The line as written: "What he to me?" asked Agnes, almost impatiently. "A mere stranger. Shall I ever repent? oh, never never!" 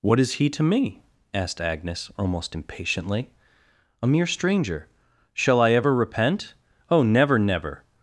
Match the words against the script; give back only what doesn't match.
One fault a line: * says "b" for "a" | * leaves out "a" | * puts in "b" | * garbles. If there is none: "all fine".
* puts in "is"